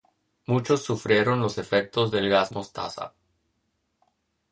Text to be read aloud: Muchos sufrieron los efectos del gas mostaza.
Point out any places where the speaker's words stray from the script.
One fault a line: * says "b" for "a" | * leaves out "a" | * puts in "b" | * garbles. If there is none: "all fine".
all fine